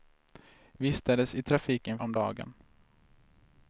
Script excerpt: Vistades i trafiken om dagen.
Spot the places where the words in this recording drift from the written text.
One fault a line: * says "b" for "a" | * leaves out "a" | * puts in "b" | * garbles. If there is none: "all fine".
all fine